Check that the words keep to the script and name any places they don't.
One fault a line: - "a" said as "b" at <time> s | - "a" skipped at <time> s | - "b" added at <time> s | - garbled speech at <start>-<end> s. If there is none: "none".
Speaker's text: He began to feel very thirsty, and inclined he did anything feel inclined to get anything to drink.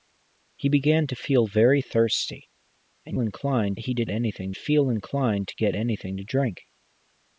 none